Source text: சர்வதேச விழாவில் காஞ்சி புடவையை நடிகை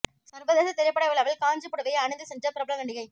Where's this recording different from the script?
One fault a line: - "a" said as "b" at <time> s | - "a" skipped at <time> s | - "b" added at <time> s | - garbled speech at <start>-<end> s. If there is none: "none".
- "திரைப்பட" added at 0.7 s
- "அணிந்து சென்ற பிரபல" added at 2.0 s